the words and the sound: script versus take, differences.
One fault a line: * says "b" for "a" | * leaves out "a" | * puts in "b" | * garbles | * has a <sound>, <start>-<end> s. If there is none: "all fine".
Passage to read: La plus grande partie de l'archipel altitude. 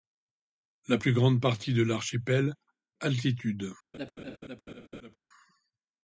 * has a laugh, 3.9-5.2 s